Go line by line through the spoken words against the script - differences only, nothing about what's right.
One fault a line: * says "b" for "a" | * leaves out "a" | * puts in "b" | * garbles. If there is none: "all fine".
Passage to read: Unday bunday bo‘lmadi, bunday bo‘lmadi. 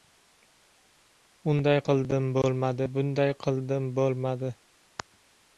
* says "qildim" for "bunday"
* puts in "qildim"